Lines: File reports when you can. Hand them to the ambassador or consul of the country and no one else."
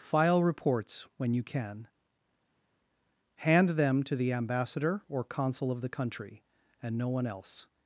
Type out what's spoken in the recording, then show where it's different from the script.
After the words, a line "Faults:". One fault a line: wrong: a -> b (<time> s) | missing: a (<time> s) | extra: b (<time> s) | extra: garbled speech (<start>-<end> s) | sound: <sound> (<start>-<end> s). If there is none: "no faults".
File reports when you can. Hand them to the ambassador or consul of the country and no one else."
Faults:
no faults